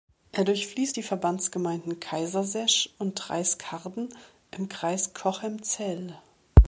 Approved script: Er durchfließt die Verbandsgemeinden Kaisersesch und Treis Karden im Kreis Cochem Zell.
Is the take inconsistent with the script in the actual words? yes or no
no